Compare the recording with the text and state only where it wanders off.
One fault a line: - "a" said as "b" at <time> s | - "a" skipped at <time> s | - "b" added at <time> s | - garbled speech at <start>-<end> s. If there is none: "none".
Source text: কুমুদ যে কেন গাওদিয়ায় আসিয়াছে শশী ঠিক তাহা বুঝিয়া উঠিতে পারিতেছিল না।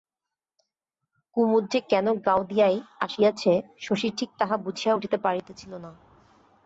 none